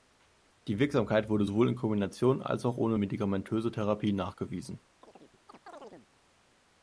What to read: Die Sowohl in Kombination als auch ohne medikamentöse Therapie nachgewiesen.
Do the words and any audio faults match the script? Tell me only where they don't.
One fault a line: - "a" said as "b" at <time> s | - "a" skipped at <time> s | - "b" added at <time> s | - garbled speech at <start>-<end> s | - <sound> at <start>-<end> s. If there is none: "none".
- "Wirksamkeit wurde" added at 0.8 s
- chirp at 5.0-6.1 s